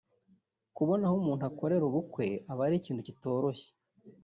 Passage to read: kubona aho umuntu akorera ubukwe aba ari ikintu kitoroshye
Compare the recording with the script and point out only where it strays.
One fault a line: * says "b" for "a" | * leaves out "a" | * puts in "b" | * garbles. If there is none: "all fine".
all fine